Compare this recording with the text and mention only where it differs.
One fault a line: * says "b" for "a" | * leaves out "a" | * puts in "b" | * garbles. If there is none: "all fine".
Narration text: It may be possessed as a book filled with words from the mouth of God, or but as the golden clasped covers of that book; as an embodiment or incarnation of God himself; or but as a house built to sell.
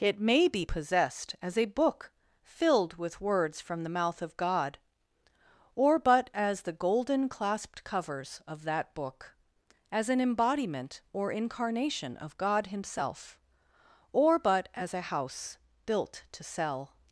all fine